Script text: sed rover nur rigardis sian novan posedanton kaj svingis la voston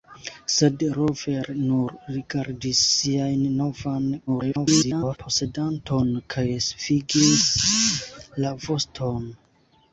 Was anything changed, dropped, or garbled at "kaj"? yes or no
no